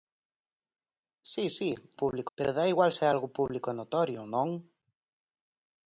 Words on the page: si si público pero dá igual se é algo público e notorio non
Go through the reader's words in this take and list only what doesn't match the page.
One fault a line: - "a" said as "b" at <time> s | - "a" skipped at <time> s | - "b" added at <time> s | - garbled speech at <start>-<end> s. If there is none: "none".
none